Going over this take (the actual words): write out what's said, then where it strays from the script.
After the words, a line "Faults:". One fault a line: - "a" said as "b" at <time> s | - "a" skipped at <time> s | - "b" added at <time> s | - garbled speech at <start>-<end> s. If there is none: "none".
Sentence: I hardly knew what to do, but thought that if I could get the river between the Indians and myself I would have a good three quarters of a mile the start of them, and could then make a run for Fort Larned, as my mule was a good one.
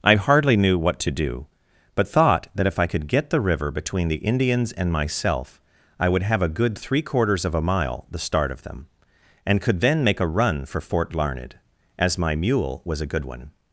I hardly knew what to do, but thought that if I could get the river between the Indians and myself I would have a good three quarters of a mile the start of them, and could then make a run for Fort Larned, as my mule was a good one.
Faults:
none